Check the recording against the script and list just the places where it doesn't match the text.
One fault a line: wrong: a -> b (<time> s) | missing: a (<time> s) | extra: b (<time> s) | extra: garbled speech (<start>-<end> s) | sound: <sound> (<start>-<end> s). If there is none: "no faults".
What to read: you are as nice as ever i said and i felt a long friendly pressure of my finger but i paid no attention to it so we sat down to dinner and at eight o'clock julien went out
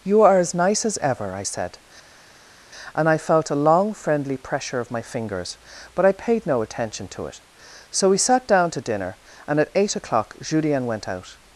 wrong: finger -> fingers (5.0 s)